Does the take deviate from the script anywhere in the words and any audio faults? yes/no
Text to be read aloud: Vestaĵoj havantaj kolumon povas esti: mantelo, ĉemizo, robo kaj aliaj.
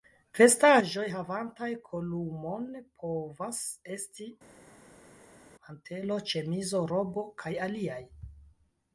no